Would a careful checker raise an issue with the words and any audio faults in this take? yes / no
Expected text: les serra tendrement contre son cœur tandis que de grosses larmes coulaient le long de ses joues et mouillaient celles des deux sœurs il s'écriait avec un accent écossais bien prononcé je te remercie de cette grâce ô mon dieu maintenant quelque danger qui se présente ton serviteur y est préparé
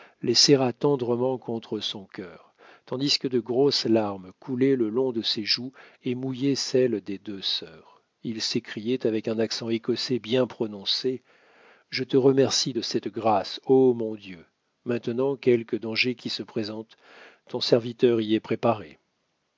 no